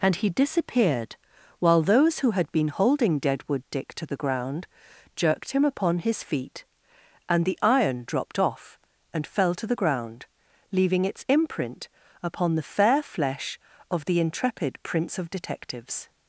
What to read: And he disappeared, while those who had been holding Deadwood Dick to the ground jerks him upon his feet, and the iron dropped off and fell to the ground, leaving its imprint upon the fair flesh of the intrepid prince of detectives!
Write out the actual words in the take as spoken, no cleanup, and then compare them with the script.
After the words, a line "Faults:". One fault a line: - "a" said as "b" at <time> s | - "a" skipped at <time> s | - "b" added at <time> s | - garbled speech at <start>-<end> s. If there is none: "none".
And he disappeared, while those who had been holding Deadwood Dick to the ground jerked him upon his feet, and the iron dropped off and fell to the ground, leaving its imprint upon the fair flesh of the intrepid prince of detectives!
Faults:
- "jerks" said as "jerked" at 5.2 s